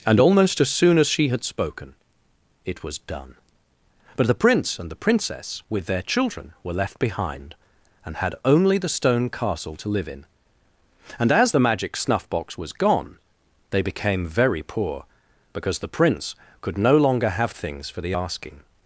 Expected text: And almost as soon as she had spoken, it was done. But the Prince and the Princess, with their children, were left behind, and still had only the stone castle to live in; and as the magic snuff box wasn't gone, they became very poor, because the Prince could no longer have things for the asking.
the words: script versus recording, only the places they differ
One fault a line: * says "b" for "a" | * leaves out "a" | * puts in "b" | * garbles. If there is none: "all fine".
* leaves out "still"
* says "was" for "wasn't"